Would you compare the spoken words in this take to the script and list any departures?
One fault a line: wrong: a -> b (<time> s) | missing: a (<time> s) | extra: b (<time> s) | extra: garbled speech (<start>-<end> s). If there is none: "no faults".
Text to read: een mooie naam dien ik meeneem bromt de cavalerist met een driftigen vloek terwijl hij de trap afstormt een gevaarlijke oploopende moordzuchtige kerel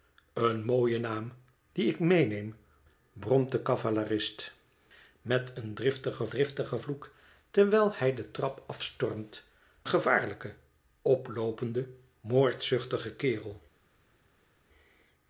extra: driftigen (6.3 s)
missing: een (9.4 s)